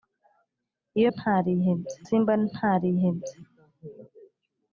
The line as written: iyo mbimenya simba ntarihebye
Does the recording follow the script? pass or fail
fail